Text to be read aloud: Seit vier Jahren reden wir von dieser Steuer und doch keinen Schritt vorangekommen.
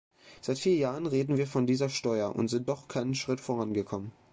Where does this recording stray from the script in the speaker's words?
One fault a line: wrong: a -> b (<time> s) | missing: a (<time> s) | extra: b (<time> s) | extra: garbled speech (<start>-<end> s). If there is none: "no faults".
extra: sind (2.5 s)